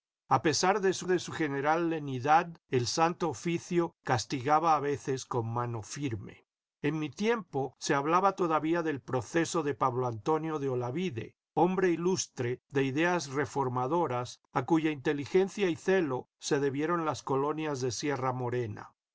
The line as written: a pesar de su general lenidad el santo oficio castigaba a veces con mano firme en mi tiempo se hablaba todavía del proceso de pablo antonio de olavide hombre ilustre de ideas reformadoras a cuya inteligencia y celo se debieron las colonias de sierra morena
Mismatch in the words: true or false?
true